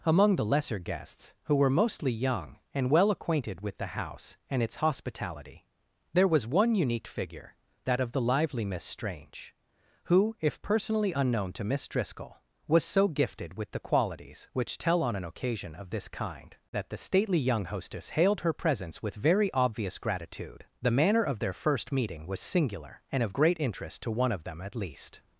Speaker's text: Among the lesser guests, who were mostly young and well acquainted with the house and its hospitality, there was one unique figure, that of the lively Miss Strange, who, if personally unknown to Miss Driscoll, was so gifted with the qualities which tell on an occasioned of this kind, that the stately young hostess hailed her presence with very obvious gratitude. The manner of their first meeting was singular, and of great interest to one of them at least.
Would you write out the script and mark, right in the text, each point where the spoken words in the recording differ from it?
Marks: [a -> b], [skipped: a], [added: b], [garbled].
Among the lesser guests, who were mostly young and well acquainted with the house and its hospitality, there was one unique figure, that of the lively Miss Strange, who, if personally unknown to Miss Driscoll, was so gifted with the qualities which tell on an [occasioned -> occasion] of this kind, that the stately young hostess hailed her presence with very obvious gratitude. The manner of their first meeting was singular, and of great interest to one of them at least.